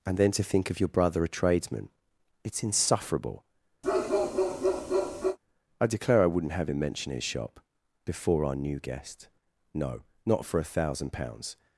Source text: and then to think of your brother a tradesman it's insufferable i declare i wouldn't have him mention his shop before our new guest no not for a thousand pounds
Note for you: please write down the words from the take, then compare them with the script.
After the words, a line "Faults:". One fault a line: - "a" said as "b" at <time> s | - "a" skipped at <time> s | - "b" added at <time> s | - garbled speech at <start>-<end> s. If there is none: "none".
and then to think of your brother a tradesman it's insufferable i declare i wouldn't have him mention his shop before our new guest no not for a thousand pounds
Faults:
none